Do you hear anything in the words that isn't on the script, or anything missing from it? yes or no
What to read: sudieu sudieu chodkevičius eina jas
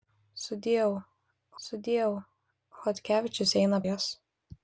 no